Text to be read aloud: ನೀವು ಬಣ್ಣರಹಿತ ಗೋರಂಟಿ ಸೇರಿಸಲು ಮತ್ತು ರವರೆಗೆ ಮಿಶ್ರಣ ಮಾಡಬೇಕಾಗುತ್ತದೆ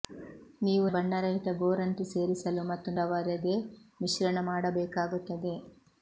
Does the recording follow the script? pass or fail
pass